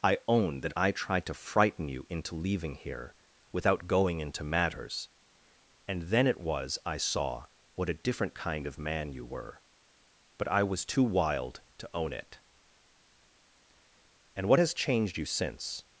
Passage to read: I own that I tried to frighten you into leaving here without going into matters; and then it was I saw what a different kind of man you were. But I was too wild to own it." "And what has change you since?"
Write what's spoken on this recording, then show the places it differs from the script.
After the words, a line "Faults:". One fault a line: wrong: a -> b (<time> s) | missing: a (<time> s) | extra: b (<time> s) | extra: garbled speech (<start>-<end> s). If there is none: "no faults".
I own that I tried to frighten you into leaving here without going into matters; and then it was I saw what a different kind of man you were. But I was too wild to own it." "And what has changed you since?"
Faults:
wrong: change -> changed (14.7 s)